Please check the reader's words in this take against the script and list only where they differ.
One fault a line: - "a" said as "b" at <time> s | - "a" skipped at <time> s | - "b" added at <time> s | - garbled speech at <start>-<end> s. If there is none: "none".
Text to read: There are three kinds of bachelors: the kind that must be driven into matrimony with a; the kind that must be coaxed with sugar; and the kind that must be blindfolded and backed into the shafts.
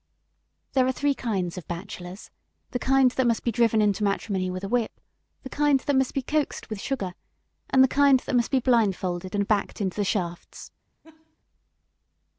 - "whip" added at 4.7 s